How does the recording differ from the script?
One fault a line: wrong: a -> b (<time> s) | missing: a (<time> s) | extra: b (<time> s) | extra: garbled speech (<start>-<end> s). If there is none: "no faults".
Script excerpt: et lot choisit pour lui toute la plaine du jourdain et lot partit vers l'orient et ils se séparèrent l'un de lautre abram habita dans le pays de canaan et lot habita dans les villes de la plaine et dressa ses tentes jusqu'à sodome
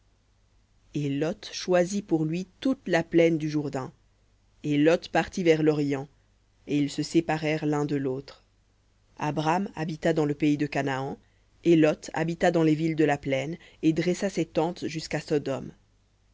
no faults